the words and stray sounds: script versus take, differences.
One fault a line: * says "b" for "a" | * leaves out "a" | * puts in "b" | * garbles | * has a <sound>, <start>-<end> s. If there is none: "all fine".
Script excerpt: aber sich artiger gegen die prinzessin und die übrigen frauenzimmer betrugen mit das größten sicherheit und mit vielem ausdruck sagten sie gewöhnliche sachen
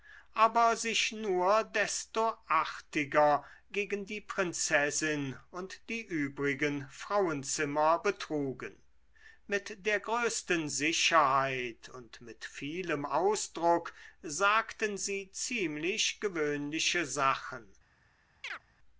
* puts in "nur desto"
* says "der" for "das"
* puts in "ziemlich"
* has a chirp, 18.4-18.6 s